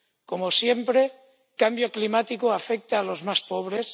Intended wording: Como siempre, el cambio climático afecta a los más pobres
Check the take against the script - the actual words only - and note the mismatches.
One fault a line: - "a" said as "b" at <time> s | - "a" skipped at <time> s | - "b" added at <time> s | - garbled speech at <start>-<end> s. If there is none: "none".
- "el" skipped at 1.0 s